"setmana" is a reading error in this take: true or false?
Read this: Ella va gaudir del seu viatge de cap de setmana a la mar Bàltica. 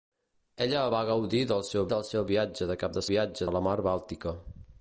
true